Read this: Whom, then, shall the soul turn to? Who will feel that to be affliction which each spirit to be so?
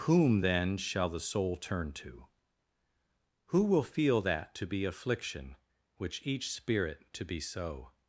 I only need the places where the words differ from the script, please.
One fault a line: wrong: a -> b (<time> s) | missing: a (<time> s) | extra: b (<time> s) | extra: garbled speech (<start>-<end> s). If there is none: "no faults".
no faults